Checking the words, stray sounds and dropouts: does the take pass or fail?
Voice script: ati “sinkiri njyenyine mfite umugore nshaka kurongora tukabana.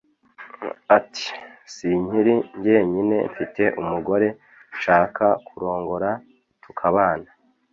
pass